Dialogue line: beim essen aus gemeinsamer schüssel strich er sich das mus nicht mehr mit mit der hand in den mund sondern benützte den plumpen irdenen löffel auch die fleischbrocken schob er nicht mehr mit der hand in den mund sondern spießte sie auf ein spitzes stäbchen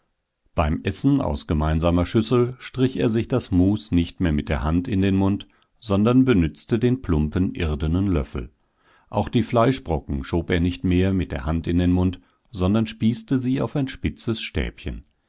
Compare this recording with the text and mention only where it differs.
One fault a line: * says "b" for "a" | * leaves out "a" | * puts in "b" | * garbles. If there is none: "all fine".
* leaves out "mit"